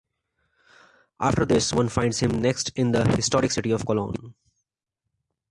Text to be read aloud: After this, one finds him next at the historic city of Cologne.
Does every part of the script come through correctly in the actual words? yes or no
no